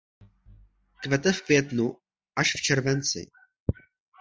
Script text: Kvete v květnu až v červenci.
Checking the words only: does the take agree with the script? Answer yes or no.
yes